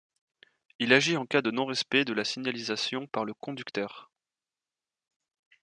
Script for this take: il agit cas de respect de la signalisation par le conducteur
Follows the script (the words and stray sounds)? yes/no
no